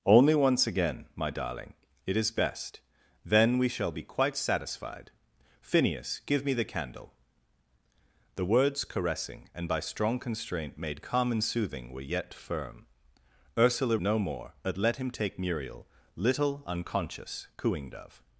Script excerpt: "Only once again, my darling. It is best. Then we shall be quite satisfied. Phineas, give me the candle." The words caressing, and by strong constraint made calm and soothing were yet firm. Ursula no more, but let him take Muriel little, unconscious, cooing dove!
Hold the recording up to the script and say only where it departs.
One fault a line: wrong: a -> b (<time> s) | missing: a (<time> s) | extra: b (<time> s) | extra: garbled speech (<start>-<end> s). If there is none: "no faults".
no faults